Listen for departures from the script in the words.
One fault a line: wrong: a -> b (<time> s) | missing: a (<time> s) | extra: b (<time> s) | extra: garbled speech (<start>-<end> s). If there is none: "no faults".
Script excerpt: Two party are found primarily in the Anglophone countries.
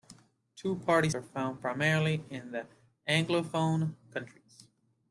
no faults